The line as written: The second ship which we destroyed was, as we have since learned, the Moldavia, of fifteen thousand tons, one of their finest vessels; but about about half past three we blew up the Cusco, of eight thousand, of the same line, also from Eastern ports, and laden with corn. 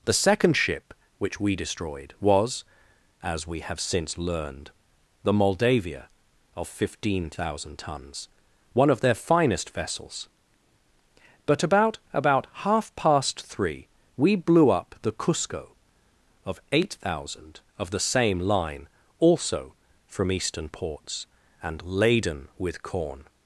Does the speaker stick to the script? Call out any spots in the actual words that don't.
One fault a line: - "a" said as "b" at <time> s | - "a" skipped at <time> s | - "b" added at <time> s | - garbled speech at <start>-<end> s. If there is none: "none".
none